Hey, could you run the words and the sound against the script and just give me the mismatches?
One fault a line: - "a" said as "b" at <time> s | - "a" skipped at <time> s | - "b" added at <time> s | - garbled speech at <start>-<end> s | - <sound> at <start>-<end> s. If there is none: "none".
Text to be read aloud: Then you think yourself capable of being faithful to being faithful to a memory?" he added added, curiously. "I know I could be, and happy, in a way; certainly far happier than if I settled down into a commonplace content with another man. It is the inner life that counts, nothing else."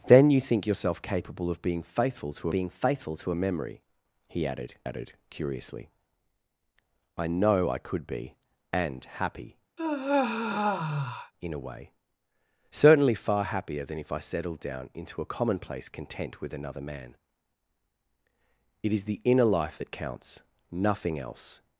- sigh at 9.8-11.3 s